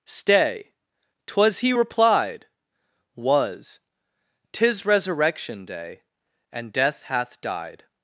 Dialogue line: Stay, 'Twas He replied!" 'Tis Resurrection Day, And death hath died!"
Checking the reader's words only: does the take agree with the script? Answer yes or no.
no